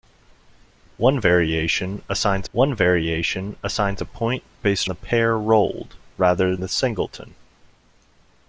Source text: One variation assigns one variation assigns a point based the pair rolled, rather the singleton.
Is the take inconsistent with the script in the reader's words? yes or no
no